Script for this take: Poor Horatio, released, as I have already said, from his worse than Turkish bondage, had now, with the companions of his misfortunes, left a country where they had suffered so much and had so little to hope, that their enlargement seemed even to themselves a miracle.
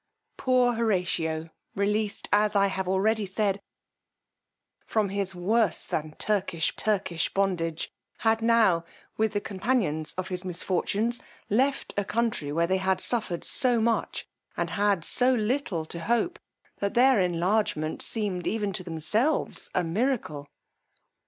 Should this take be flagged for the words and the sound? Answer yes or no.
yes